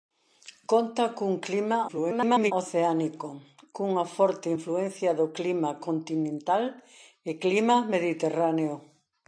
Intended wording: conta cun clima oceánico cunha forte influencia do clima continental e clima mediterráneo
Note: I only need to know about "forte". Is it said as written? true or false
true